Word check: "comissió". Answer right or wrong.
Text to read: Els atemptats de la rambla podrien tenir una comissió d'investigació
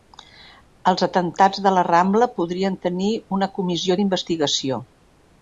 right